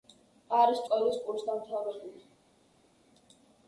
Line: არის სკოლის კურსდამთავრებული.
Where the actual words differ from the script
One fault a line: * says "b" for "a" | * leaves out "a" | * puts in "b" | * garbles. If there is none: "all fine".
all fine